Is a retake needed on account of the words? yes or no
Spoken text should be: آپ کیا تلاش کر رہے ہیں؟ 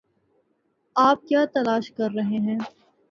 no